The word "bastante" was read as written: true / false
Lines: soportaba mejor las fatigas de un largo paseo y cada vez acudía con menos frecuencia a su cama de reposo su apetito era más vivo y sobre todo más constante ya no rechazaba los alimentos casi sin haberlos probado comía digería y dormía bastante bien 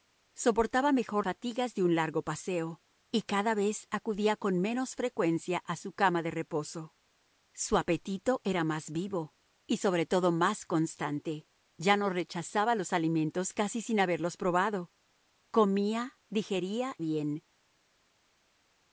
false